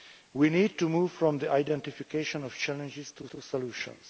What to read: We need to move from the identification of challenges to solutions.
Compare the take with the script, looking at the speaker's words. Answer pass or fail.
fail